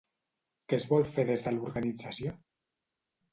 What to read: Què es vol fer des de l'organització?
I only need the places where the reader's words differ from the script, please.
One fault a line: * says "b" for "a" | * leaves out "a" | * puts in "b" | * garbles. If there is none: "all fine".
all fine